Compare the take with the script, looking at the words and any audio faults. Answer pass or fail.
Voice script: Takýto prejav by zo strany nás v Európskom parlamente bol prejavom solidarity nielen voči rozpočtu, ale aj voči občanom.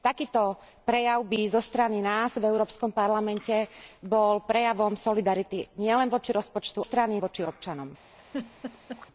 fail